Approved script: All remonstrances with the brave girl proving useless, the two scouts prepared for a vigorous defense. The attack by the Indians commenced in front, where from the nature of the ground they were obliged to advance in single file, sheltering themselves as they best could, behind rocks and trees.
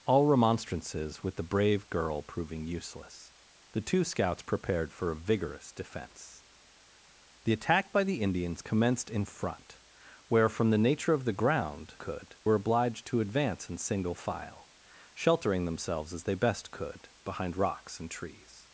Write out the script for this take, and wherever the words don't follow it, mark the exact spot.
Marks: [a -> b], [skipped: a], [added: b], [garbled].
All remonstrances with the brave girl proving useless, the two scouts prepared for a vigorous defense. The attack by the Indians commenced in front, where from the nature of the ground [they -> could] were obliged to advance in single file, sheltering themselves as they best could, behind rocks and trees.